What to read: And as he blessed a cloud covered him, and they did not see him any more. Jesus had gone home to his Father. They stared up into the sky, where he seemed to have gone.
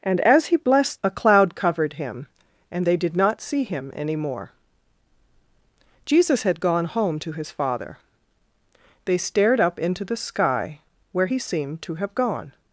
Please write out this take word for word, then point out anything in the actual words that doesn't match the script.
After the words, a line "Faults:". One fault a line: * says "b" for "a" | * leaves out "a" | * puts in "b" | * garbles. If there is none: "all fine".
And as he blessed a cloud covered him, and they did not see him any more. Jesus had gone home to his Father. They stared up into the sky, where he seemed to have gone.
Faults:
all fine